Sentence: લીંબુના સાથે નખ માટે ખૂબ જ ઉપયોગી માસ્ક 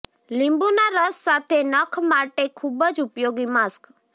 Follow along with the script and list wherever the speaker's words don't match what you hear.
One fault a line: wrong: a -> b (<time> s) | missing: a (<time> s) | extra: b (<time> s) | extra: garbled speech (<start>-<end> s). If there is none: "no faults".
extra: રસ (0.9 s)